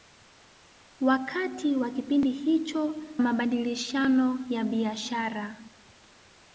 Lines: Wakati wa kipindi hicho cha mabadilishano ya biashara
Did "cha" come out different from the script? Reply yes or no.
yes